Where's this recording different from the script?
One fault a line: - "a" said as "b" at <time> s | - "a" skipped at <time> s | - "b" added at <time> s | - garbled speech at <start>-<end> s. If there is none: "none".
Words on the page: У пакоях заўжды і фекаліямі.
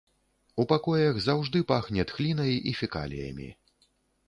- "пахне тхлінай" added at 1.7 s